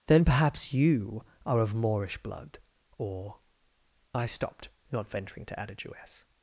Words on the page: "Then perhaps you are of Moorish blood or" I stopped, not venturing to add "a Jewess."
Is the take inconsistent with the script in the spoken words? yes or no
no